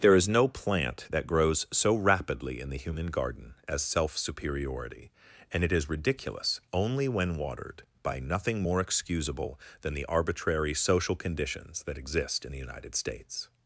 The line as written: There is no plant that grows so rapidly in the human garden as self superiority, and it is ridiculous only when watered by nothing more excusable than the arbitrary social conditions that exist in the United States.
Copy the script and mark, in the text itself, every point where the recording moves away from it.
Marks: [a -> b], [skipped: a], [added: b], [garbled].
There is no plant that grows so rapidly in the human garden as self superiority, and it is ridiculous only when watered by nothing more excusable than the arbitrary social conditions that exist in the United States.